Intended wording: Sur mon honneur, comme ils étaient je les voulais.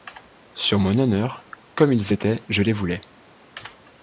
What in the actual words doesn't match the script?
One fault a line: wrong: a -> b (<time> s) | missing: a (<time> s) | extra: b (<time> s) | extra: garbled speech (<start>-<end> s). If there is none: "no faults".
no faults